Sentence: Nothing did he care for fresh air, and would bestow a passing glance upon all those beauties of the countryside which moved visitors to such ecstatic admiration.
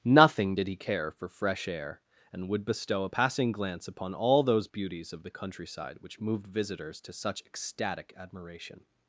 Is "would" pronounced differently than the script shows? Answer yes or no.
no